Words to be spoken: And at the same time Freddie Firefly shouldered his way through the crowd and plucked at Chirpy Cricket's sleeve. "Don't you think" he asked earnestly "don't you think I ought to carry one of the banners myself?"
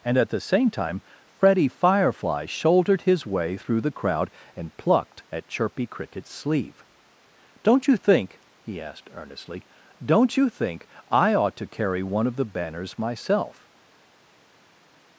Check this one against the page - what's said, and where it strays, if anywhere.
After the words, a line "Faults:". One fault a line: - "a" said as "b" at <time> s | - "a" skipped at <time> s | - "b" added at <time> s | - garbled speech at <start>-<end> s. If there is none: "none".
And at the same time Freddie Firefly shouldered his way through the crowd and plucked at Chirpy Cricket's sleeve. "Don't you think" he asked earnestly "don't you think I ought to carry one of the banners myself?"
Faults:
none